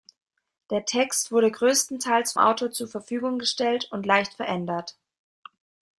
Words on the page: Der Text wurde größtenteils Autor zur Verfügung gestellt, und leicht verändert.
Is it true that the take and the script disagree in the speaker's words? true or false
false